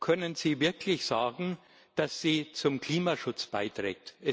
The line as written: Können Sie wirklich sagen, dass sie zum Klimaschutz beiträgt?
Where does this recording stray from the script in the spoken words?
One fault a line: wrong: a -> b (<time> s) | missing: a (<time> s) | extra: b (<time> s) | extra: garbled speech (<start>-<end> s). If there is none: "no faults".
no faults